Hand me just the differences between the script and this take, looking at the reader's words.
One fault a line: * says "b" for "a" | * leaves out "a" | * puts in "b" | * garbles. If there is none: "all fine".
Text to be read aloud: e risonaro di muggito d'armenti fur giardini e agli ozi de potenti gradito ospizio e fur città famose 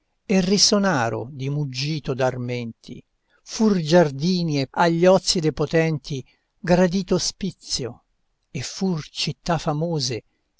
all fine